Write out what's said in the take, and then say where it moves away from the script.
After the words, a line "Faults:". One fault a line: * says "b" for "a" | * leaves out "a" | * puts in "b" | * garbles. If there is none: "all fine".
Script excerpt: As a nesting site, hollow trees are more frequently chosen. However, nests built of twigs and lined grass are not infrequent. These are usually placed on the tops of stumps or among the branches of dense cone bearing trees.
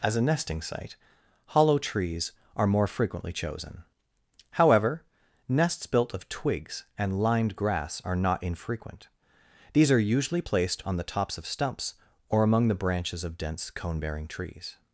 As a nesting site, hollow trees are more frequently chosen. However, nests built of twigs and lined grass are not infrequent. These are usually placed on the tops of stumps or among the branches of dense cone bearing trees.
Faults:
all fine